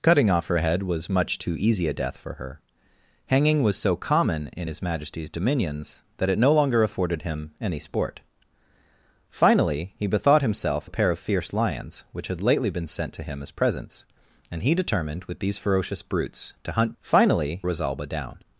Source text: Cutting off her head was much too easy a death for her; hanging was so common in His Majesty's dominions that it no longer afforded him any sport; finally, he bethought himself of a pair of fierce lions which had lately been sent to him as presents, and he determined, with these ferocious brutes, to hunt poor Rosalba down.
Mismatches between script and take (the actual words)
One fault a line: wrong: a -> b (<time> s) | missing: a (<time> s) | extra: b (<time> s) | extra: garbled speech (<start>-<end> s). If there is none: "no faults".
missing: of (10.9 s)
wrong: poor -> finally (17.0 s)